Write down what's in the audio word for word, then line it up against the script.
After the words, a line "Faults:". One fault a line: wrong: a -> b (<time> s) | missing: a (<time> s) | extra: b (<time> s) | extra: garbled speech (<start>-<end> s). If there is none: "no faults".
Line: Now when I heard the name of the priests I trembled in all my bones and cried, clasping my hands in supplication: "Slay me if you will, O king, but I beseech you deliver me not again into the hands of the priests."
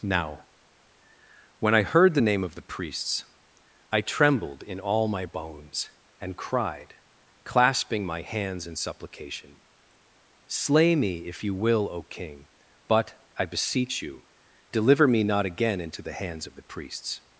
Now when I heard the name of the priests I trembled in all my bones and cried, clasping my hands in supplication: "Slay me if you will, O king, but I beseech you deliver me not again into the hands of the priests."
Faults:
no faults